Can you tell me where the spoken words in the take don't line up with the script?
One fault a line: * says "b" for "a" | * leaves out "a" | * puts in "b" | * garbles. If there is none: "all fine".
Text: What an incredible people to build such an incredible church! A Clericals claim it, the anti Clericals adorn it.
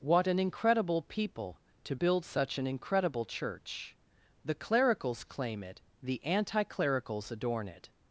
* says "The" for "A"